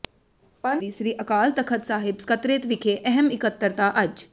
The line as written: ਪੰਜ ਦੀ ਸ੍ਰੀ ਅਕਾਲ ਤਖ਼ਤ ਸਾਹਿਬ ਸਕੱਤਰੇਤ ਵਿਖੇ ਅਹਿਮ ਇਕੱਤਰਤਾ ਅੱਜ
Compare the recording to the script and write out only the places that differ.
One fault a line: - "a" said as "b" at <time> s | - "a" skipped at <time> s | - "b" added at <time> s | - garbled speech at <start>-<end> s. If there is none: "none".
none